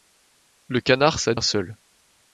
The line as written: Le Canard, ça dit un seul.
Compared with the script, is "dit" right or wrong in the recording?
wrong